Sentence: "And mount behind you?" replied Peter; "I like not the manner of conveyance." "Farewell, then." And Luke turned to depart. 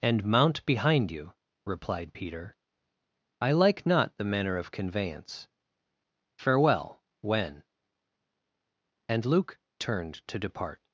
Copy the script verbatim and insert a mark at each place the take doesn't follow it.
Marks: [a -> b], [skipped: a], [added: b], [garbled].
"And mount behind you?" replied Peter; "I like not the manner of conveyance." "Farewell, [then." -> when] And Luke turned to depart.